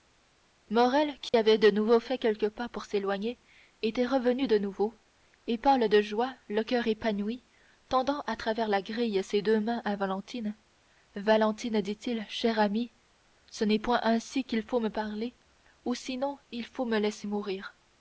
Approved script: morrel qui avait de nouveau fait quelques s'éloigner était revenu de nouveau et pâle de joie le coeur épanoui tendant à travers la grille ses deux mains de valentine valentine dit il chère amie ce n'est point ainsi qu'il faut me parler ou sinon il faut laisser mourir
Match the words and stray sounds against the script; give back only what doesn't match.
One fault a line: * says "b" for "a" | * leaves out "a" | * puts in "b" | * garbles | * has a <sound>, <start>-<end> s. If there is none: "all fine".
* has a dropout, 1.3-1.3 s
* puts in "pas pour"
* says "à" for "de"
* puts in "me"